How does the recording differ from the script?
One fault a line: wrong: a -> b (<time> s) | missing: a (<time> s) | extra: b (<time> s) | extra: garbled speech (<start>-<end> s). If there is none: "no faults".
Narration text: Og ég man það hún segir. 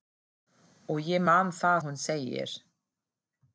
no faults